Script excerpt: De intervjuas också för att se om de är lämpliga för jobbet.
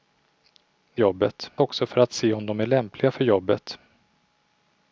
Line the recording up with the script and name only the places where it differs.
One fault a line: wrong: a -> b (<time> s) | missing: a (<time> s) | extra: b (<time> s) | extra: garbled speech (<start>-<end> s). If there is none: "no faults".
wrong: intervjuas -> jobbet (1.0 s)